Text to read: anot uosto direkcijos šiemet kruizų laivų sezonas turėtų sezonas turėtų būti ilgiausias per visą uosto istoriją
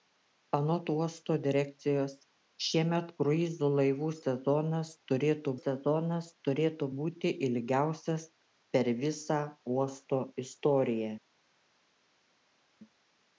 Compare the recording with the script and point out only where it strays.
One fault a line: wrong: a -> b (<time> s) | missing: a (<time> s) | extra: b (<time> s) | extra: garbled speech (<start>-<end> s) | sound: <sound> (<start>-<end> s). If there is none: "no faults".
no faults